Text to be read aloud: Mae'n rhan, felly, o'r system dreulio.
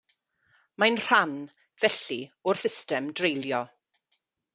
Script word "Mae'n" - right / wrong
right